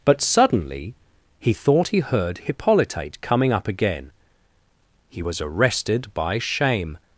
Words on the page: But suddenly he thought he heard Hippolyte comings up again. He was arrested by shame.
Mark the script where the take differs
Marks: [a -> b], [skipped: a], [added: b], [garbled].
But suddenly he thought he heard Hippolyte [comings -> coming] up again. He was arrested by shame.